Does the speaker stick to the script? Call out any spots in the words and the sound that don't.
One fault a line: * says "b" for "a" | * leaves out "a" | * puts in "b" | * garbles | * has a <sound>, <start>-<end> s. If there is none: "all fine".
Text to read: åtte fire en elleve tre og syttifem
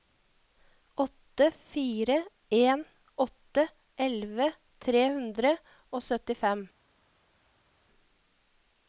* puts in "åtte"
* puts in "hundre"